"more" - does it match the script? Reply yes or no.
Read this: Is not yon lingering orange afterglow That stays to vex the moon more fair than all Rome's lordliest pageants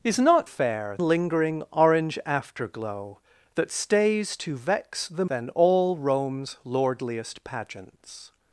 no